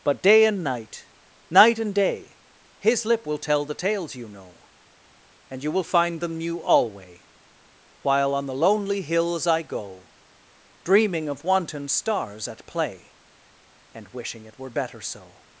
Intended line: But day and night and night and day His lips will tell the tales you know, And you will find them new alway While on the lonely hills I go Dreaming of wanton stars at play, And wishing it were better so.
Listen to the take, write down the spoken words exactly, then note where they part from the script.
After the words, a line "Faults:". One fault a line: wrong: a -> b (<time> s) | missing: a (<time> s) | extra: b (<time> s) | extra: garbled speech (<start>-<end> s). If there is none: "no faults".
But day and night night and day His lip will tell the tales you know, And you will find them new alway While on the lonely hills I go Dreaming of wanton stars at play, And wishing it were better so.
Faults:
missing: and (1.1 s)
wrong: lips -> lip (3.0 s)